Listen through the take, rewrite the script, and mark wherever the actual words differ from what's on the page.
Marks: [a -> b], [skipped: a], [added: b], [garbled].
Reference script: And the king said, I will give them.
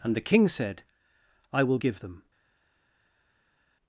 And the king said, I will give them.